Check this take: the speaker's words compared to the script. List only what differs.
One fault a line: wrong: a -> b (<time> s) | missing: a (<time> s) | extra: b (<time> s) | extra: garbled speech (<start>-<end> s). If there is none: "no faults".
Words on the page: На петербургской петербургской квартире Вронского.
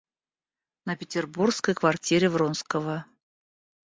missing: петербургской (1.8 s)